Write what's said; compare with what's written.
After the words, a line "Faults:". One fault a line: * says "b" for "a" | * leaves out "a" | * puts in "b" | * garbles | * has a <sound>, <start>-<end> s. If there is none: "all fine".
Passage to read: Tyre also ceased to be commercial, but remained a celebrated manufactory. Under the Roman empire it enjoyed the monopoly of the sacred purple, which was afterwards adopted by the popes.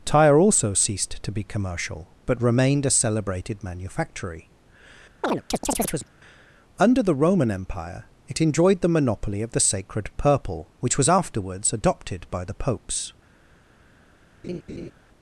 Tyre also ceased to be commercial, but remained a celebrated manufactory. Under the Roman empire it enjoyed the monopoly of the sacred purple, which was afterwards adopted by the popes.
Faults:
* has a chirp, 5.2-6.1 s
* has a laugh, 14.4-14.9 s